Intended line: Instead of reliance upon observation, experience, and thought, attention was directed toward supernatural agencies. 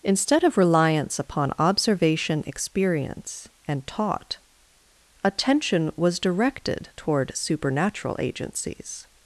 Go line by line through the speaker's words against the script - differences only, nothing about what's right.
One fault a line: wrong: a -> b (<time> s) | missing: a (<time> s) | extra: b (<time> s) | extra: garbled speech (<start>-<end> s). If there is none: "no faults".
wrong: thought -> taught (3.9 s)